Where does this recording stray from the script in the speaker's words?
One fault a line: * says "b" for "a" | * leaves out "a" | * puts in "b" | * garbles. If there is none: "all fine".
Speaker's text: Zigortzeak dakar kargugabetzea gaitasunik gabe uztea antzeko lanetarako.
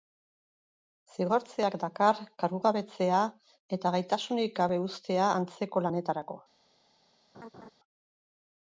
* puts in "eta"